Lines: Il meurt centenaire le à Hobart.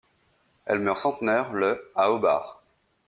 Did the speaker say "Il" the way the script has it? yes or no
no